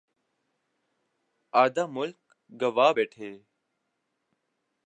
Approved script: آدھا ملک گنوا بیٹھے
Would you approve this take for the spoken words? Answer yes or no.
yes